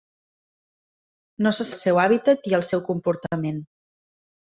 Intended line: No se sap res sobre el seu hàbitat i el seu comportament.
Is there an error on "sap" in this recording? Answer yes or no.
yes